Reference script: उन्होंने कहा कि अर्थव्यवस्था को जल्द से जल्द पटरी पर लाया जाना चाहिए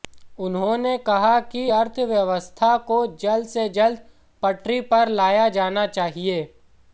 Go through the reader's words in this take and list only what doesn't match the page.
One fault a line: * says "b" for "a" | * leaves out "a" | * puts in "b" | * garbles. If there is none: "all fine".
all fine